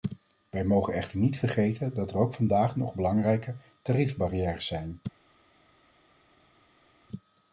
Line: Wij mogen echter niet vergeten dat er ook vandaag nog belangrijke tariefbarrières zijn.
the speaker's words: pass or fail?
pass